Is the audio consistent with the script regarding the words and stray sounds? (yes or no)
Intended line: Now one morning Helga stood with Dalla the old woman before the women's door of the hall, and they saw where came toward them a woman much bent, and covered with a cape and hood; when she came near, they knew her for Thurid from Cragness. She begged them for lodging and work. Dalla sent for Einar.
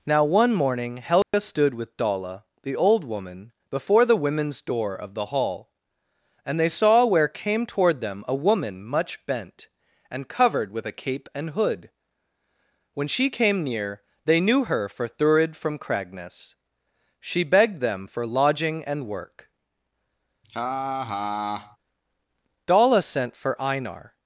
no